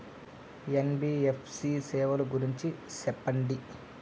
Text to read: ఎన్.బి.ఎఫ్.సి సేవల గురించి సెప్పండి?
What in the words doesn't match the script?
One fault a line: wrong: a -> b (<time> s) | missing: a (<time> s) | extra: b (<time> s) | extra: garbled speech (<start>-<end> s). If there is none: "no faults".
no faults